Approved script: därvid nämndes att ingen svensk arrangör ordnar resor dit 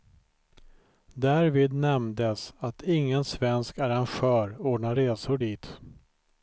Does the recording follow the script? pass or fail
pass